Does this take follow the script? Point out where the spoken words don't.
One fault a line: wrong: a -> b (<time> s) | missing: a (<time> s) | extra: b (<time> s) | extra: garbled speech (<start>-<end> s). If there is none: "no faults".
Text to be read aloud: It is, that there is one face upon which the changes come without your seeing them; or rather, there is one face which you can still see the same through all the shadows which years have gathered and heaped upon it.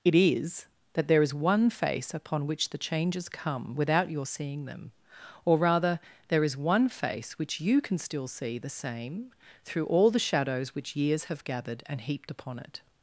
no faults